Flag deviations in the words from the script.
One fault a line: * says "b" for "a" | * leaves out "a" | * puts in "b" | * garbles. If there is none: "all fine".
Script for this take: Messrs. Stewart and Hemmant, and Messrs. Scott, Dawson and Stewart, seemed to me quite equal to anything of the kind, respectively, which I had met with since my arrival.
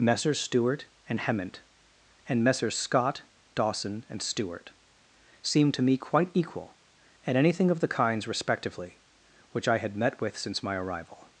* says "at" for "to"
* says "kinds" for "kind"